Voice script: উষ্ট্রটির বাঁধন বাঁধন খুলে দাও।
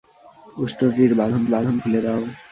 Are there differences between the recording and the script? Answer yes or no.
no